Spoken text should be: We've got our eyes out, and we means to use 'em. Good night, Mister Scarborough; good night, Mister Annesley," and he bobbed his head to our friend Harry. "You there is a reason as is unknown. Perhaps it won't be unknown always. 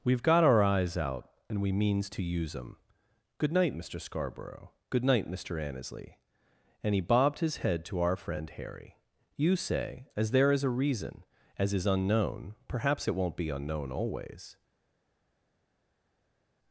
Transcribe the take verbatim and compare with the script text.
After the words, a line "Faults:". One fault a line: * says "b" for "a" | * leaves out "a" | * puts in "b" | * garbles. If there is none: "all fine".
We've got our eyes out, and we means to use 'em. Good night, Mister Scarborough; good night, Mister Annesley," and he bobbed his head to our friend Harry. "You say as there is a reason as is unknown. Perhaps it won't be unknown always.
Faults:
* puts in "say as"